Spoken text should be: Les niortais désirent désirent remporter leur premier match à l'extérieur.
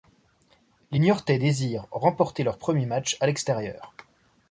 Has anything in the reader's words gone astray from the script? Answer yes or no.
yes